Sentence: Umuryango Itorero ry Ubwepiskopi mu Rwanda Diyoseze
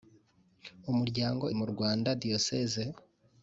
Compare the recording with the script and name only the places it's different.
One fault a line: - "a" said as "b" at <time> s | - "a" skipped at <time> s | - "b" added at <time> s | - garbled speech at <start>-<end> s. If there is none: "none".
- "Itorero ry Ubwepiskopi" skipped at 1.4 s